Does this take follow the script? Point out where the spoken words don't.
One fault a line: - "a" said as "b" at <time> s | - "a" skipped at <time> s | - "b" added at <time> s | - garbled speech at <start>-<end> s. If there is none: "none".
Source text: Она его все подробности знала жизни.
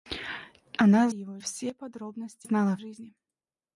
none